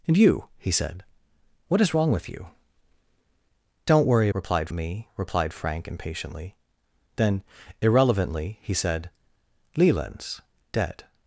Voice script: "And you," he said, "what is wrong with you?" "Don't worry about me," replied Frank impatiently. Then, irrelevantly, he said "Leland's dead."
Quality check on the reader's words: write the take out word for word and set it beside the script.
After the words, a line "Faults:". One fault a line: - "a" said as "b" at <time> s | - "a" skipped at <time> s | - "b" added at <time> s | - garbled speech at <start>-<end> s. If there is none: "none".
"And you," he said, "what is wrong with you?" "Don't worry replied me," replied Frank impatiently. Then, irrelevantly, he said "Leland's dead."
Faults:
- "about" said as "replied" at 4.3 s